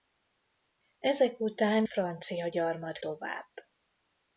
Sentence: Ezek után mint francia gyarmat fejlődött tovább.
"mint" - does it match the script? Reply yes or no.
no